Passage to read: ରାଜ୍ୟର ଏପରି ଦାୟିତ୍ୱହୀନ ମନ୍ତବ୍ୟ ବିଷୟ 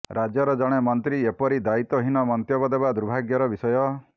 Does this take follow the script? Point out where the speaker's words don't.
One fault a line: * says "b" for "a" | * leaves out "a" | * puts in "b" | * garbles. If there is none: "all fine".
* puts in "ଜଣେ ମନ୍ତ୍ରୀ"
* puts in "ଦେବା ଦୁର୍ଭାଗ୍ୟର"